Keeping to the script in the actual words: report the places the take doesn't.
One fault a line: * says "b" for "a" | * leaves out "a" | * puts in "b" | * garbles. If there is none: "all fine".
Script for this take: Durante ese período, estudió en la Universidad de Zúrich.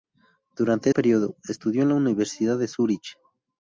* leaves out "ese"